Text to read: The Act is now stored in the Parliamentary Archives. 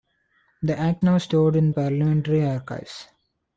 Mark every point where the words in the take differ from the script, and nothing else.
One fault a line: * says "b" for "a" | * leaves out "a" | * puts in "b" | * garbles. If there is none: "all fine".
* leaves out "is"
* leaves out "the"